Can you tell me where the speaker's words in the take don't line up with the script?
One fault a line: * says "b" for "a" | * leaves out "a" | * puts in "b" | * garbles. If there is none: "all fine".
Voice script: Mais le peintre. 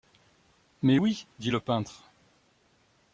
* puts in "oui dit"